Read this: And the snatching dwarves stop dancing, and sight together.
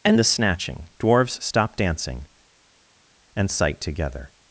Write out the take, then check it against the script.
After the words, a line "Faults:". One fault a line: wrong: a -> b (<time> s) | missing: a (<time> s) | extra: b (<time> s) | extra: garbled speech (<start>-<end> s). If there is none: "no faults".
And the snatching dwarves stop dancing, and sight together.
Faults:
no faults